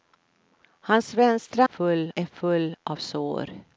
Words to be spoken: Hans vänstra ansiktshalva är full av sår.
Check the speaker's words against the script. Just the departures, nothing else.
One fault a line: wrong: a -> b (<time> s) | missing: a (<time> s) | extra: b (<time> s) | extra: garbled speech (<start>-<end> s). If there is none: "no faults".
wrong: ansiktshalva -> full (1.6 s)